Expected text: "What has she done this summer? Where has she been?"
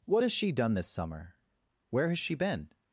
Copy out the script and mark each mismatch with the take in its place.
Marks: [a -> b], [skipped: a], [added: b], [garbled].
"What has she done this summer? Where has she been?"